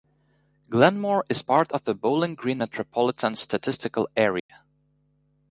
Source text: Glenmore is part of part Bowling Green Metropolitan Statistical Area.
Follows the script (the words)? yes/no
no